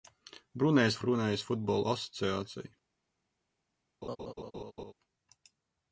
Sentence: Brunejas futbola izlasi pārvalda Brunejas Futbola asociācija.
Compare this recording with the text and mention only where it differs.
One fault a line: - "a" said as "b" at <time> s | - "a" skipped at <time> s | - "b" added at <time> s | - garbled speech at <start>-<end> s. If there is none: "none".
- "futbola izlasi pārvalda" skipped at 0.9 s